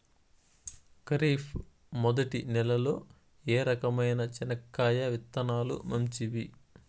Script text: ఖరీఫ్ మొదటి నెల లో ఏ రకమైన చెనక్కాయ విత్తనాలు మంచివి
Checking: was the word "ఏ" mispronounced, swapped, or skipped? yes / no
no